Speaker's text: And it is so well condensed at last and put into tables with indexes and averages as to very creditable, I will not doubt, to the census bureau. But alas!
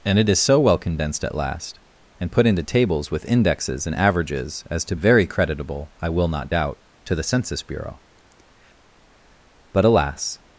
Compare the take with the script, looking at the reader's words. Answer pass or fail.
pass